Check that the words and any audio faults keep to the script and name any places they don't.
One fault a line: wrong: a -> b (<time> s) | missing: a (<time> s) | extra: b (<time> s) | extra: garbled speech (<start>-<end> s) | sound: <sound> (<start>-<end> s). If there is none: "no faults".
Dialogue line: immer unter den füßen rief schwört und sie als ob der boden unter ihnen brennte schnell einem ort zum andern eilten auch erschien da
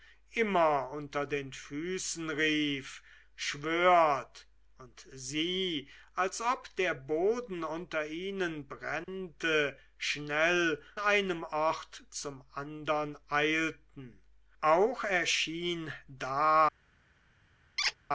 sound: dropout (9.0-9.1 s)
sound: squeak (17.8-18.0 s)